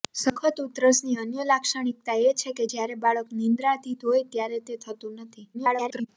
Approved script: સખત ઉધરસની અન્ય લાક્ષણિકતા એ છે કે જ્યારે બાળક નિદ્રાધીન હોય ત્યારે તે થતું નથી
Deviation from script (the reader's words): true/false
true